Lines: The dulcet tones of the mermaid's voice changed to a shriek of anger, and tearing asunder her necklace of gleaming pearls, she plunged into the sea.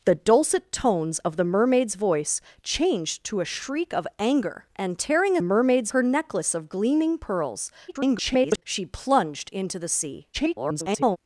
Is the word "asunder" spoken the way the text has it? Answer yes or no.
no